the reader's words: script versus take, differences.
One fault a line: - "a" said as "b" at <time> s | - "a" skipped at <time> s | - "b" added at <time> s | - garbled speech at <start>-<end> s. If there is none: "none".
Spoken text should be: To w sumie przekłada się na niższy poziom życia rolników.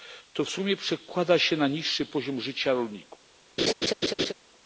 none